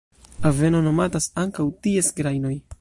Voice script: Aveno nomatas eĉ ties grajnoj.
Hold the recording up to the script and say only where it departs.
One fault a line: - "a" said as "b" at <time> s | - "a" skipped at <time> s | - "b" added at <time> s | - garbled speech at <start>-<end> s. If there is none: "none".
- "eĉ" said as "ankaŭ" at 1.4 s